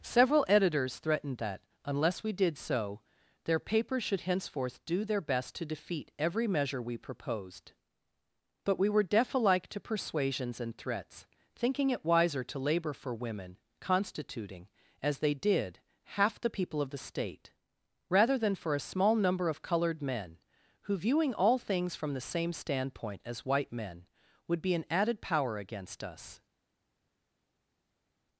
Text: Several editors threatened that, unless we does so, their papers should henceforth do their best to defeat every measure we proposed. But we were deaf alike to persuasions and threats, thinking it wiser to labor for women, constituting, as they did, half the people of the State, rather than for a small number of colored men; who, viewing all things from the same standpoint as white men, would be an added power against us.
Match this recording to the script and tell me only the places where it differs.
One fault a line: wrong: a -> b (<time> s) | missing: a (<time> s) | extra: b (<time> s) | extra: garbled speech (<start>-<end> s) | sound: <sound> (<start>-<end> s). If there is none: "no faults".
wrong: does -> did (2.3 s)